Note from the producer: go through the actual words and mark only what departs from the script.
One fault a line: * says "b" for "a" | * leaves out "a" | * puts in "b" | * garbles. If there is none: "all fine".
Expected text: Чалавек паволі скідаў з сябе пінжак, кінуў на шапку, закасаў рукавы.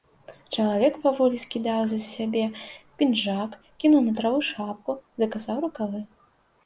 * puts in "траву"